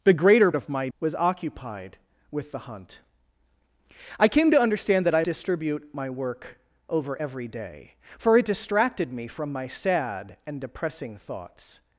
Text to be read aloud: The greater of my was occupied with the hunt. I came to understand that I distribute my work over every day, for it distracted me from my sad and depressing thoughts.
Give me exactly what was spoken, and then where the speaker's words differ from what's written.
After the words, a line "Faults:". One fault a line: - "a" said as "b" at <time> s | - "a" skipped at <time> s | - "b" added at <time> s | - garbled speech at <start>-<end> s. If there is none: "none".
The greater of my was occupied with the hunt. I came to understand that I distribute my work over every day, for it distracted me from my sad and depressing thoughts.
Faults:
none